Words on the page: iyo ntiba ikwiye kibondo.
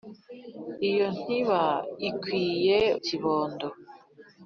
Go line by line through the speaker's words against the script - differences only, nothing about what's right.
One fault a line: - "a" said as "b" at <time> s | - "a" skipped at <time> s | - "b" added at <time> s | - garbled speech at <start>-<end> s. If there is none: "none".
none